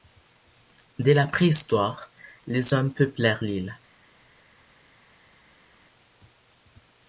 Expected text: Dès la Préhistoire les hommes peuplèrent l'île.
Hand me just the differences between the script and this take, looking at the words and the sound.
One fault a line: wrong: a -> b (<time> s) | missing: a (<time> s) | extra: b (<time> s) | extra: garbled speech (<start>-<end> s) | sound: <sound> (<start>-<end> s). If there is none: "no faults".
no faults